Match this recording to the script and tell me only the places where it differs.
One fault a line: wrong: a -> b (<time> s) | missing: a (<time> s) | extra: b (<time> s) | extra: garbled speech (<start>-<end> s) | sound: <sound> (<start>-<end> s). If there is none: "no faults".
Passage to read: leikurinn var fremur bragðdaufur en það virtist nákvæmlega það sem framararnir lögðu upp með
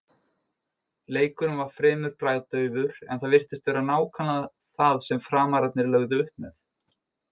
extra: vera (3.7 s)